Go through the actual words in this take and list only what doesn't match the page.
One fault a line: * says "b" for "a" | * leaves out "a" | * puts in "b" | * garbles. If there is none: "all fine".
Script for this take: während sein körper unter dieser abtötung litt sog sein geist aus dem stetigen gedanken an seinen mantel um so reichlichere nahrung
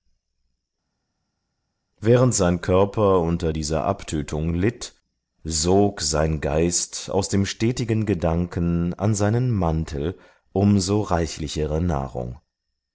all fine